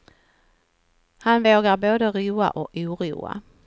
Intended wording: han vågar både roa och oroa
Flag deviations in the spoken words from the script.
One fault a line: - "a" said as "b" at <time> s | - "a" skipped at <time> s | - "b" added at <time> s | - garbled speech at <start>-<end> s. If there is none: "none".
none